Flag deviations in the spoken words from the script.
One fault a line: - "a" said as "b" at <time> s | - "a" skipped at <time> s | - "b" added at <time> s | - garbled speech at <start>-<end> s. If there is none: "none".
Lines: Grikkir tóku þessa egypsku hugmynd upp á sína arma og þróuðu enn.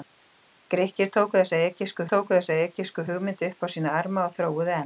- "tóku þessa egypsku" added at 2.1 s